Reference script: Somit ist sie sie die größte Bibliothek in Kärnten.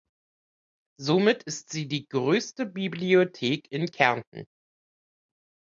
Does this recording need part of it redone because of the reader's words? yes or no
yes